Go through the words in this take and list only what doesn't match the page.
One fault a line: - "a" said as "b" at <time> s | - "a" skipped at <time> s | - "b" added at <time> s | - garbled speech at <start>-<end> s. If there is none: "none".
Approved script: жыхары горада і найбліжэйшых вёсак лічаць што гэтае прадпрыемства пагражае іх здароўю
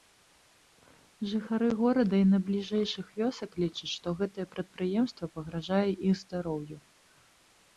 none